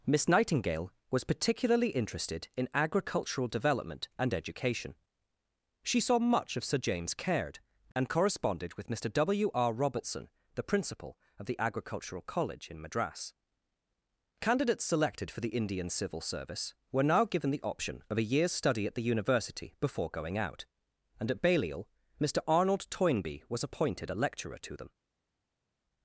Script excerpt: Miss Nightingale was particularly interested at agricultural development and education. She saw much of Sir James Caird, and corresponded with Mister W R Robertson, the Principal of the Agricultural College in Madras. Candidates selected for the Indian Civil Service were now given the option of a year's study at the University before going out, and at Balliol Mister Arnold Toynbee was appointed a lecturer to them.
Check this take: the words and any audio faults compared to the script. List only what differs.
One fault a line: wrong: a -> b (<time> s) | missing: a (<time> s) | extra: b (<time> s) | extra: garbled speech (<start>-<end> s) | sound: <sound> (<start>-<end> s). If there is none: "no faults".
wrong: at -> in (2.6 s)